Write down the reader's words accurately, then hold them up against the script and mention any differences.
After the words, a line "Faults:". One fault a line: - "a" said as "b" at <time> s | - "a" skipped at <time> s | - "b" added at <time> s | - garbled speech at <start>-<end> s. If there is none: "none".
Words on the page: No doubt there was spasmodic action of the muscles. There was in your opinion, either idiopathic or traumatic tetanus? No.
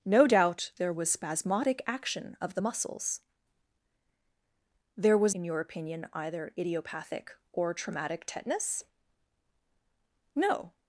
No doubt there was spasmodic action of the muscles. There was in your opinion, either idiopathic or traumatic tetanus? No.
Faults:
none